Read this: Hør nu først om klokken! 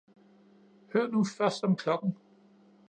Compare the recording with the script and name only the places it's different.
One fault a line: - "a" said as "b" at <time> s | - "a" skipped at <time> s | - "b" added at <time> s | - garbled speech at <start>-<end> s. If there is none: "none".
none